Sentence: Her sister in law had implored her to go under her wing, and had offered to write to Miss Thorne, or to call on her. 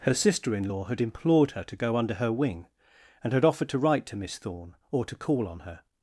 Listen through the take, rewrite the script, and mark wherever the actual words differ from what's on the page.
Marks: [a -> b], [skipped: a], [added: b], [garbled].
Her sister in law had implored her to go under her wing, and had offered to write to Miss Thorne, or to call on her.